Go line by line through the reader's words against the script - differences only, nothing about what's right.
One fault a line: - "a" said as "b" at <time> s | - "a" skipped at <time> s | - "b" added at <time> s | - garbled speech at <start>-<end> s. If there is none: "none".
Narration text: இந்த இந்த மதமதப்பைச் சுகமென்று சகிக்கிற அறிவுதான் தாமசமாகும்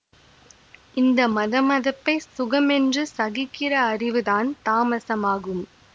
- "இந்த" skipped at 1.3 s